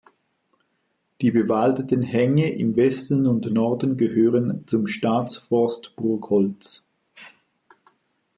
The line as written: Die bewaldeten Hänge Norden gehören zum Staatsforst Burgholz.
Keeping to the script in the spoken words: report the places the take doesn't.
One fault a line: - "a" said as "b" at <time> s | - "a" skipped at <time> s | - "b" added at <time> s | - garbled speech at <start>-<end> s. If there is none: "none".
- "im Westen und" added at 2.5 s